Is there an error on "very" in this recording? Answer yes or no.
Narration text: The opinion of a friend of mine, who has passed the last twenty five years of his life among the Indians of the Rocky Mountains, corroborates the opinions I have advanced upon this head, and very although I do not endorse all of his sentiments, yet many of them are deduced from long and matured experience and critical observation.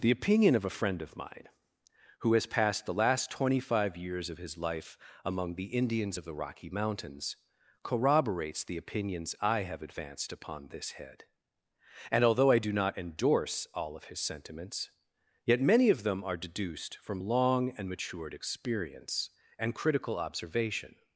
yes